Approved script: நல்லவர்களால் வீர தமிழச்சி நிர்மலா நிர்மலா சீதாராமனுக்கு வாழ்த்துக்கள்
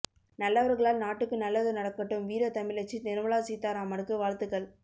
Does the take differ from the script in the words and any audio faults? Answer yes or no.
yes